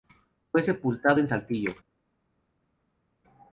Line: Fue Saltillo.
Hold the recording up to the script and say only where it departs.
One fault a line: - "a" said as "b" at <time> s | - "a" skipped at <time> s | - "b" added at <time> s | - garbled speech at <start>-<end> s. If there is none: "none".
- "sepultado en" added at 0.6 s